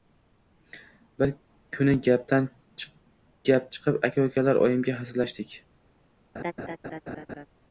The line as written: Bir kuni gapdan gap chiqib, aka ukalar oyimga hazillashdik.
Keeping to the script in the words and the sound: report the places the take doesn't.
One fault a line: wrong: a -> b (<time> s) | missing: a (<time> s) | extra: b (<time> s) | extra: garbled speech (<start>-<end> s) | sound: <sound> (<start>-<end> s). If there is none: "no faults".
sound: laugh (6.3-7.5 s)